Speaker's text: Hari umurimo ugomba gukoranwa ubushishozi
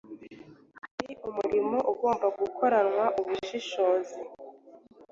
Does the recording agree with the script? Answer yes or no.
yes